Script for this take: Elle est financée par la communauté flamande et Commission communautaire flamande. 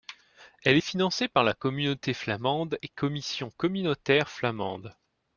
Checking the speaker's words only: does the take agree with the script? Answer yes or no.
yes